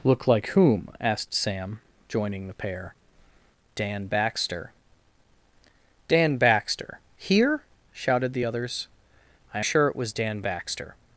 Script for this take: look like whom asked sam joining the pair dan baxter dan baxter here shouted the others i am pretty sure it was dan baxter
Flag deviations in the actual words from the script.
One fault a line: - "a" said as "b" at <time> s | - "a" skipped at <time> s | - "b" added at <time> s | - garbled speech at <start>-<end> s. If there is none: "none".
- "am pretty" skipped at 9.6 s